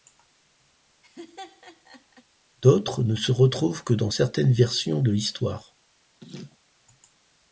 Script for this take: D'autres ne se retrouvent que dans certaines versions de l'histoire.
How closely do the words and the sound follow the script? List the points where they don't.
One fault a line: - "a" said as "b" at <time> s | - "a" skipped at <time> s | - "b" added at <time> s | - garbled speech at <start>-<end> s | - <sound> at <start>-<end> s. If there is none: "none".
- laugh at 1.0-2.2 s
- laugh at 6.2-6.6 s